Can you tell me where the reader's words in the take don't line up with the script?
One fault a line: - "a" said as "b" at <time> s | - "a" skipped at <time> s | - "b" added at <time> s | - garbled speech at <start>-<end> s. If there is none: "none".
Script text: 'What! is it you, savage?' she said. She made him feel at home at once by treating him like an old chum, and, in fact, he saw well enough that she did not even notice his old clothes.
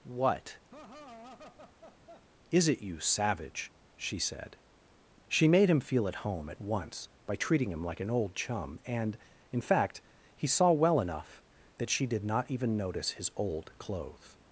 none